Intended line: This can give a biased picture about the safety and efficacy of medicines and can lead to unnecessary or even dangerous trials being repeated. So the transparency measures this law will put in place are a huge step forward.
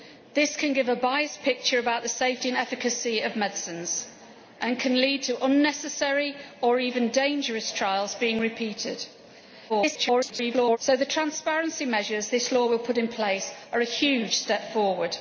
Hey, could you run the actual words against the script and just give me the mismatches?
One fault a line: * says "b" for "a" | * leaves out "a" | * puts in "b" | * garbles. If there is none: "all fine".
* garbles